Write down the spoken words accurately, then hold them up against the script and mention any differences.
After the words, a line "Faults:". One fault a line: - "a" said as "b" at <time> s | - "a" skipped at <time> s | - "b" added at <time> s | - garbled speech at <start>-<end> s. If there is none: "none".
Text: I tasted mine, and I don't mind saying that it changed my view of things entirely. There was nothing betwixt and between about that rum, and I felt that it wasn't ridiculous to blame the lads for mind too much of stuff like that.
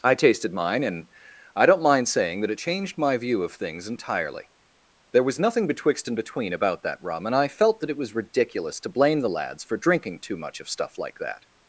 I tasted mine, and I don't mind saying that it changed my view of things entirely. There was nothing betwixt and between about that rum, and I felt that it was ridiculous to blame the lads for drinking too much of stuff like that.
Faults:
- "wasn't" said as "was" at 8.0 s
- "mind" said as "drinking" at 9.8 s